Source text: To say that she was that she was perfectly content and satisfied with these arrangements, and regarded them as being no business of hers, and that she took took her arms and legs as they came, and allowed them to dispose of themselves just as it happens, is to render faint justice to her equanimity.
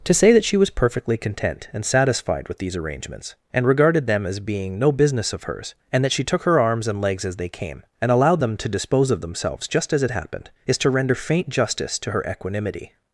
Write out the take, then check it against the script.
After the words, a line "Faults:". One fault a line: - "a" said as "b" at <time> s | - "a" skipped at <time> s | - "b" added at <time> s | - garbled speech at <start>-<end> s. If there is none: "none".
To say that she was perfectly content and satisfied with these arrangements, and regarded them as being no business of hers, and that she took her arms and legs as they came, and allowed them to dispose of themselves just as it happened, is to render faint justice to her equanimity.
Faults:
- "that she was" skipped at 0.7 s
- "took" skipped at 6.4 s
- "happens" said as "happened" at 10.1 s